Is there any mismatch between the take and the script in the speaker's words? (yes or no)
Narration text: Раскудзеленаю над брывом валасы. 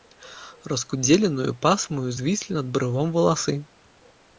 yes